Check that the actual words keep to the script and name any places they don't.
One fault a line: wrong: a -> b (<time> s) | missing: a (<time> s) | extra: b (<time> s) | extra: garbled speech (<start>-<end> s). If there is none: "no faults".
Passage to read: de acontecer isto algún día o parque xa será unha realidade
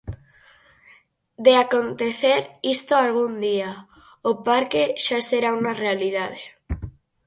no faults